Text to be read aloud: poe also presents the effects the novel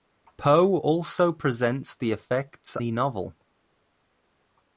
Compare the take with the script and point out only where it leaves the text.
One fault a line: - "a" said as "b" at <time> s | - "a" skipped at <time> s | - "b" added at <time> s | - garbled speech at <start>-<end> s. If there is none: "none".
none